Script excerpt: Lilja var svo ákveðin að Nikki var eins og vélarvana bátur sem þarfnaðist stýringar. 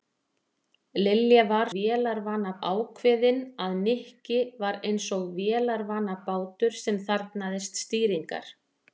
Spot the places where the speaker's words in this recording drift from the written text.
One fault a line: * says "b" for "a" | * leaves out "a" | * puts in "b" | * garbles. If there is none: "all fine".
* says "vélarvana" for "svo"